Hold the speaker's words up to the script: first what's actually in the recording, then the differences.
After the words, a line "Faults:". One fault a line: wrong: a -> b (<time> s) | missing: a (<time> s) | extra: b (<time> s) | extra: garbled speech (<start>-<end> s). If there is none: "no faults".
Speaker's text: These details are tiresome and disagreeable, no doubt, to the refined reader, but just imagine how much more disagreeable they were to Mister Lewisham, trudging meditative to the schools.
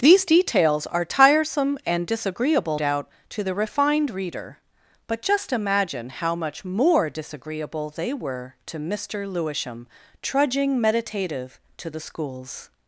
These details are tiresome and disagreeable, doubt, to the refined reader, but just imagine how much more disagreeable they were to Mister Lewisham, trudging meditative to the schools.
Faults:
missing: no (2.8 s)